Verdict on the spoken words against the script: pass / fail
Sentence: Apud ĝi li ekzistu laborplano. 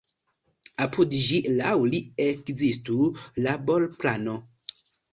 fail